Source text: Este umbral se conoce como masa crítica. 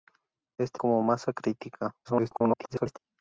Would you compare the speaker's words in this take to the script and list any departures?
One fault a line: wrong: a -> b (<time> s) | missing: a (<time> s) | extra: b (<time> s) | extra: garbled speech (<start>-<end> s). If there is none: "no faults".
missing: umbral se conoce (0.8 s)
extra: garbled speech (2.0-3.0 s)